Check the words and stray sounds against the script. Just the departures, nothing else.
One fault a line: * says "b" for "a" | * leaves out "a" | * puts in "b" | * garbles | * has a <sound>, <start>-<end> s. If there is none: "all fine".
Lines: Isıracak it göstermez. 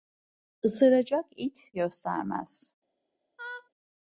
* has a laugh, 3.4-3.7 s